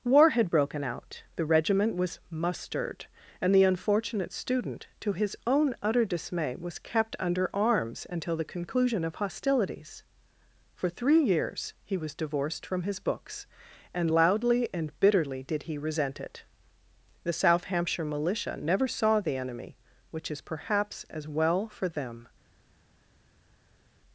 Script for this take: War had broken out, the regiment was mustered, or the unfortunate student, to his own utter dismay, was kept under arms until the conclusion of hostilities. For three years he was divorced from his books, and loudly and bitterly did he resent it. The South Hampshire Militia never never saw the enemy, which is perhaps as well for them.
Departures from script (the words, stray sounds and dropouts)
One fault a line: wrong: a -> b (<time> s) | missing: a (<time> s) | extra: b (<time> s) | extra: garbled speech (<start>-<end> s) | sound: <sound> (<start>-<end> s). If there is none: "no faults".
wrong: or -> and (3.4 s)
missing: never (18.9 s)